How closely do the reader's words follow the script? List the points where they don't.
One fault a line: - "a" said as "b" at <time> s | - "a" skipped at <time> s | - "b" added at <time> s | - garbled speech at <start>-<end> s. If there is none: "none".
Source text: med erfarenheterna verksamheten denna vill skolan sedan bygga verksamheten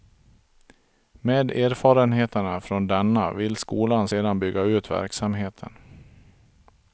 - "verksamheten" said as "från" at 2.6 s
- "ut" added at 4.6 s